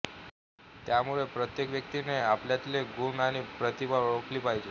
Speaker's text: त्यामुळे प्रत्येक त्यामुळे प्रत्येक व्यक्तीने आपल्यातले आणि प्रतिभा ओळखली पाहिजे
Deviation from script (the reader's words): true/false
true